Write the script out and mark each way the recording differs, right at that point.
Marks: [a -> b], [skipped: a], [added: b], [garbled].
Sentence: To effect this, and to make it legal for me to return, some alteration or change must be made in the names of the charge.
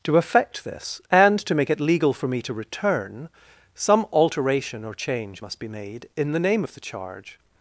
To effect this, and to make it legal for me to return, some alteration or change must be made in the [names -> name] of the charge.